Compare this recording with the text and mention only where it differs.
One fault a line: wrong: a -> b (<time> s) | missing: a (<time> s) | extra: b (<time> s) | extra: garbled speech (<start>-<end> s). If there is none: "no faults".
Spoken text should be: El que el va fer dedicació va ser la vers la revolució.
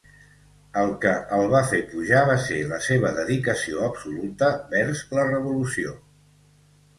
wrong: dedicació -> pujar (1.9 s)
extra: seva dedicació absoluta (2.9 s)